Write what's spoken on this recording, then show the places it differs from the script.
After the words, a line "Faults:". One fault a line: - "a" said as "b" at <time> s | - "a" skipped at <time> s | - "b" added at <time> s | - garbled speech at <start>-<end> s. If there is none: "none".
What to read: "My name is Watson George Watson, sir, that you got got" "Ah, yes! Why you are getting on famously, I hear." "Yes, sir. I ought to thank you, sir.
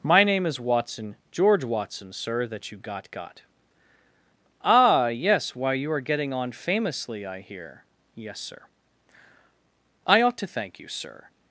"My name is Watson George Watson, sir, that you got got" "Ah, yes! Why you are getting on famously, I hear." "Yes, sir. I ought to thank you, sir.
Faults:
none